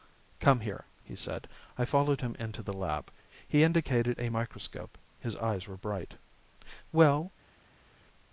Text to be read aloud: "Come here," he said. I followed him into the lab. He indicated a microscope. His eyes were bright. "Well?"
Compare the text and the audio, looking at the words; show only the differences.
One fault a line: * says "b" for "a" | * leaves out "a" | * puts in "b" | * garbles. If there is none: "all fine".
all fine